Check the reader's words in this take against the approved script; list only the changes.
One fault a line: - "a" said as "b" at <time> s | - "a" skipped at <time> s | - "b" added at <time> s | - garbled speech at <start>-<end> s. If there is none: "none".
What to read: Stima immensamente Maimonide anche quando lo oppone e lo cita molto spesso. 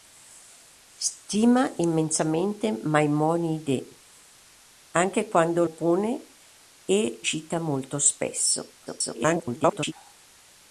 - "lo" skipped at 5.7 s
- "lo" skipped at 7.2 s
- garbled speech at 8.9-9.9 s